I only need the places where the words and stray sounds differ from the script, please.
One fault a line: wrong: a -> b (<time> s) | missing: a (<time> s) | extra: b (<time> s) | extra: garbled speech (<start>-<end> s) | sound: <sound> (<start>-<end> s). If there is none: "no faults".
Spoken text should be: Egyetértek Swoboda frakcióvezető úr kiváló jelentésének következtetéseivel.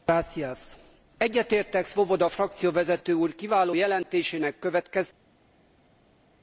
no faults